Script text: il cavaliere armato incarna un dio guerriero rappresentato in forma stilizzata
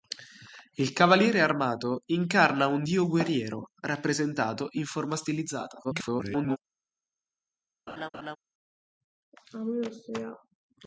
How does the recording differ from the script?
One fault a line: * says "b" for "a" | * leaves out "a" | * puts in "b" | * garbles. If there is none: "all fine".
* garbles